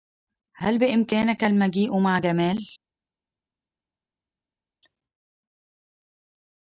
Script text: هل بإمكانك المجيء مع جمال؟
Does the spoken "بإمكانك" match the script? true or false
true